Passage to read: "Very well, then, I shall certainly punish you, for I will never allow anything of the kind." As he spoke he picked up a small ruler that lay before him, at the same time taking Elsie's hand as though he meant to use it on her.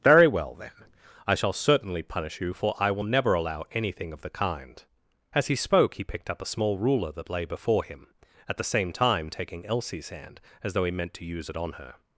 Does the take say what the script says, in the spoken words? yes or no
yes